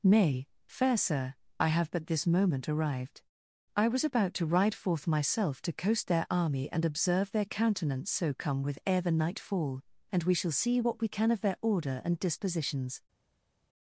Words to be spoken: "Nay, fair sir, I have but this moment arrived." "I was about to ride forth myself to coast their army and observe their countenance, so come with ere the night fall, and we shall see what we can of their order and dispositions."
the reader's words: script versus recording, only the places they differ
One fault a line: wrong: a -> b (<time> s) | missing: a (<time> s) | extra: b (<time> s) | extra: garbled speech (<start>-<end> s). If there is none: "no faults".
no faults